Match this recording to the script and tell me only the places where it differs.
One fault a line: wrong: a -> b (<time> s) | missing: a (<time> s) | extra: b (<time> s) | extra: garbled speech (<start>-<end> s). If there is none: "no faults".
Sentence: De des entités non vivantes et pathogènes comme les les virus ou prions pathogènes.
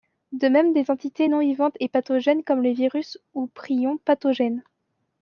extra: même (0.5 s)
missing: les (2.7 s)